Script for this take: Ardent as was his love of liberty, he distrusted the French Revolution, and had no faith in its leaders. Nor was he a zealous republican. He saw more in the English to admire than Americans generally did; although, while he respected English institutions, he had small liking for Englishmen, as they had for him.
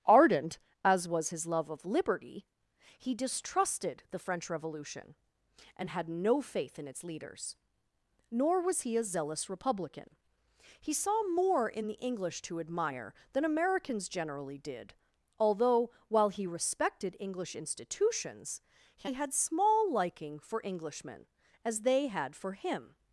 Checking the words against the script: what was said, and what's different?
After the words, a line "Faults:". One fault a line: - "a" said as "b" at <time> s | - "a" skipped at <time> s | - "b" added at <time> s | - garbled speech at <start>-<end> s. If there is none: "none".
Ardent as was his love of liberty, he distrusted the French Revolution, and had no faith in its leaders. Nor was he a zealous republican. He saw more in the English to admire than Americans generally did; although, while he respected English institutions, he had small liking for Englishmen, as they had for him.
Faults:
none